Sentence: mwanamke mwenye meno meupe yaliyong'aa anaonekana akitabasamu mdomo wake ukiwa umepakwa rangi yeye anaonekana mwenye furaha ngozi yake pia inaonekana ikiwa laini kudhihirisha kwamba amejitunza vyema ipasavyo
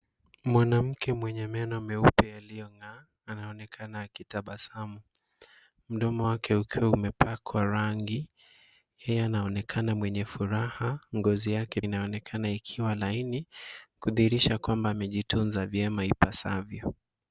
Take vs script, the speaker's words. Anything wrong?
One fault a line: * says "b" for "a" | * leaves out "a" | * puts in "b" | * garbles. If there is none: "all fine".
* leaves out "pia"